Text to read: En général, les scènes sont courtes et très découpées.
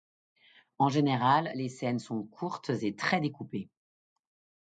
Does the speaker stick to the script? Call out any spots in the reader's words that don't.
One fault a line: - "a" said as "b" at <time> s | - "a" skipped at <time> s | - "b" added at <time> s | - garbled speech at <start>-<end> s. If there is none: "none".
none